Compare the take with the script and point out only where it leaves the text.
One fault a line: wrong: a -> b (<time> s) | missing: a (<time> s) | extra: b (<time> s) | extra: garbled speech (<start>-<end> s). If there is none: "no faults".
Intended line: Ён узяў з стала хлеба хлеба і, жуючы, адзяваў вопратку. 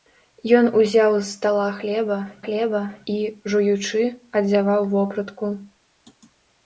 no faults